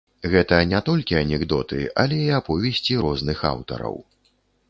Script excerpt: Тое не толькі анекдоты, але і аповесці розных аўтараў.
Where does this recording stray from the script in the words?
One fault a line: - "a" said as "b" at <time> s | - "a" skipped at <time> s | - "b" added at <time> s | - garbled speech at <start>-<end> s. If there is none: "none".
- "Тое" said as "Гэта" at 0.3 s